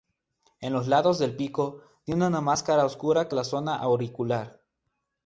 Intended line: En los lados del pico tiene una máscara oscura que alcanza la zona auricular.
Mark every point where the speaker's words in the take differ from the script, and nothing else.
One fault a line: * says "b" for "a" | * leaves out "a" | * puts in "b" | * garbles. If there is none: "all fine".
* leaves out "alcanza"